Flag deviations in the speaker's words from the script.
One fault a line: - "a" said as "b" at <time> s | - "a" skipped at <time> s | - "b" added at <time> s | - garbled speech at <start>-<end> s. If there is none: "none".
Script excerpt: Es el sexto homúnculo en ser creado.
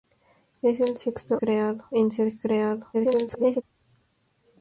- "homúnculo" said as "creado" at 1.4 s
- garbled speech at 2.9-3.6 s